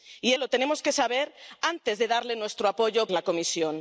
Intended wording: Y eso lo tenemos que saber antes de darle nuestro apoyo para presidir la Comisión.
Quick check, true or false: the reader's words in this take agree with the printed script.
false